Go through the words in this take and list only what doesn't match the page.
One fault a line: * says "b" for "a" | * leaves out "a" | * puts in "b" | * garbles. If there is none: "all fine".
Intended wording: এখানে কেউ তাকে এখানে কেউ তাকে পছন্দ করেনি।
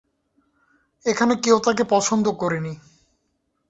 * leaves out "এখানে কেউ তাকে"